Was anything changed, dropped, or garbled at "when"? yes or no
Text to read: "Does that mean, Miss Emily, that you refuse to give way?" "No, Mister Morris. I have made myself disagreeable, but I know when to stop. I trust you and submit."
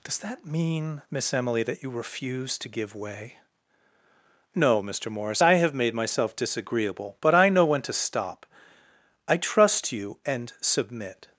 no